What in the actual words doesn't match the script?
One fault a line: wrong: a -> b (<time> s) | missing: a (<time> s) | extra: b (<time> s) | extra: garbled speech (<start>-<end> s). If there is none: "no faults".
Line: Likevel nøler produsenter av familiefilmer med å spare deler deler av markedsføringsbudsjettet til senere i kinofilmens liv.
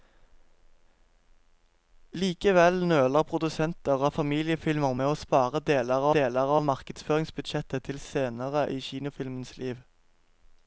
no faults